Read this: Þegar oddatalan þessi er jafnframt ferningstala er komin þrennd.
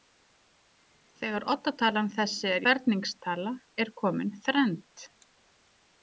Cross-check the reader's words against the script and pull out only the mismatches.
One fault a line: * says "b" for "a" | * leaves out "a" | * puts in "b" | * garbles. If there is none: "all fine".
* leaves out "jafnframt"